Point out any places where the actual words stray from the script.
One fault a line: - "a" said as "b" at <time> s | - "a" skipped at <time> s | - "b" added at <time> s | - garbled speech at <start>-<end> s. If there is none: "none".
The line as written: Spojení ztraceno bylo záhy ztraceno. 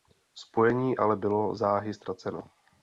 - "ztraceno" said as "ale" at 0.9 s